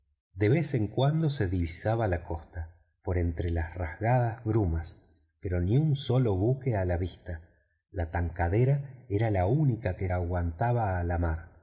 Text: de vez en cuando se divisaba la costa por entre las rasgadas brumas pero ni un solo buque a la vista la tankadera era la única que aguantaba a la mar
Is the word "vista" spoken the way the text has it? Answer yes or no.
yes